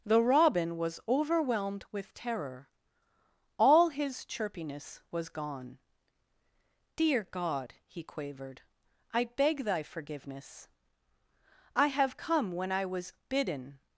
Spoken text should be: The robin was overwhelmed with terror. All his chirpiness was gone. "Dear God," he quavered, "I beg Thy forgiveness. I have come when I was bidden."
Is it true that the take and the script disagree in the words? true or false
false